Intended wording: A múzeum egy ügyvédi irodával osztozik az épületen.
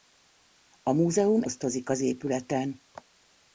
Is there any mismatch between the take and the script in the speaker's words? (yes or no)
yes